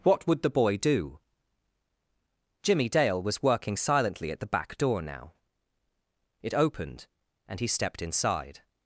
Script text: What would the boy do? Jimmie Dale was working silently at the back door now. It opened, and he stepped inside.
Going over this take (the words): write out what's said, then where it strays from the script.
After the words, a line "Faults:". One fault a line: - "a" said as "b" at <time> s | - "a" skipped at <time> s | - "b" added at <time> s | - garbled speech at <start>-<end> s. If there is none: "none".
What would the boy do? Jimmie Dale was working silently at the back door now. It opened, and he stepped inside.
Faults:
none